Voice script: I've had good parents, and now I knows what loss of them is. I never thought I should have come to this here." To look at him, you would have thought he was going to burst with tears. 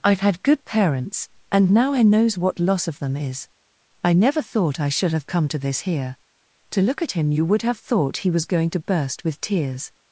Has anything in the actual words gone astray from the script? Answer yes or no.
no